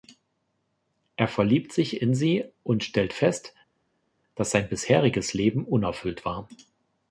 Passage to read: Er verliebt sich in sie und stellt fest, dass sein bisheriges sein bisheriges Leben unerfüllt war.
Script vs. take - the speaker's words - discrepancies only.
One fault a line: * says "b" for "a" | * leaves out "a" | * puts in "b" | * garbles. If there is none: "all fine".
* leaves out "sein bisheriges"